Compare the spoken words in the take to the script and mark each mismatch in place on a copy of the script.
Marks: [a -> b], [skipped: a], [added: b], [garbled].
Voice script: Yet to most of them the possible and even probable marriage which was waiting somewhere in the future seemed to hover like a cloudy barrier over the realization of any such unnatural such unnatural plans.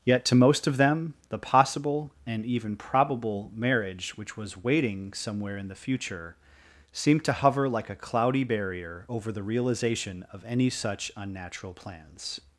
Yet to most of them the possible and even probable marriage which was waiting somewhere in the future seemed to hover like a cloudy barrier over the realization of any such unnatural [skipped: such unnatural] plans.